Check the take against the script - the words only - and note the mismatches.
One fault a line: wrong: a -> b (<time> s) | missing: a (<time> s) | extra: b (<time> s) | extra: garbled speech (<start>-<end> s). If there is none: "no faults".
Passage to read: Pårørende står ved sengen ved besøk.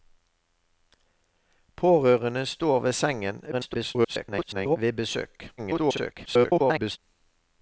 extra: garbled speech (3.5-4.8 s)
extra: garbled speech (5.6-7.0 s)